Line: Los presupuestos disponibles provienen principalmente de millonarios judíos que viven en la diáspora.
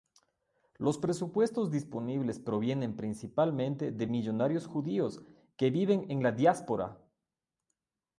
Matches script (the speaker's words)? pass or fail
pass